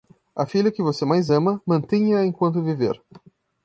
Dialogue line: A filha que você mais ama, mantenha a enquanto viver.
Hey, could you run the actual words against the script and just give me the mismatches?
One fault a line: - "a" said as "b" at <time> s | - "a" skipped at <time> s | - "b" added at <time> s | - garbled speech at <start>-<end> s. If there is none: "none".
none